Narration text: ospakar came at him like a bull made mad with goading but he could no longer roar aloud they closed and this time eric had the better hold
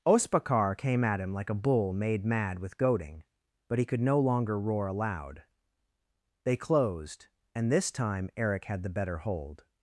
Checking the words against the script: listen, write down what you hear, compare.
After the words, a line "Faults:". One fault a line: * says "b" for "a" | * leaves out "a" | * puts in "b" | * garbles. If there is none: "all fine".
ospakar came at him like a bull made mad with goading but he could no longer roar aloud they closed and this time eric had the better hold
Faults:
all fine